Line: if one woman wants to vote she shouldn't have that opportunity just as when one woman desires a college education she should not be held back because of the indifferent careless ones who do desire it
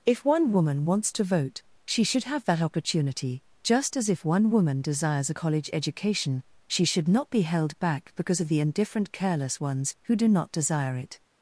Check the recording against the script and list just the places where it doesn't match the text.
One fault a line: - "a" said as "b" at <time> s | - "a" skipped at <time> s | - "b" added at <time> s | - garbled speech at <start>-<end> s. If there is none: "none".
- "shouldn't" said as "should" at 2.0 s
- "when" said as "if" at 4.1 s
- "not" added at 10.3 s